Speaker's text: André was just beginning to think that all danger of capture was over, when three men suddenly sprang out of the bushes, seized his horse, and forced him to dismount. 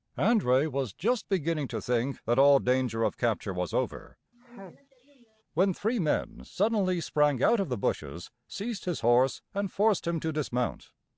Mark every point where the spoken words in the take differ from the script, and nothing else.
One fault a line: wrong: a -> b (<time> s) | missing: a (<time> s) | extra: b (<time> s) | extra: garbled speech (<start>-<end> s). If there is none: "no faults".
no faults